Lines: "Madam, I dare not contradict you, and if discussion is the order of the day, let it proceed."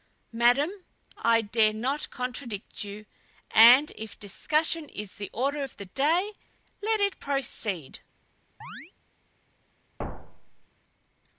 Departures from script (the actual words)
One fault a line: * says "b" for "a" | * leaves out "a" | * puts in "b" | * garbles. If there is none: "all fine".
all fine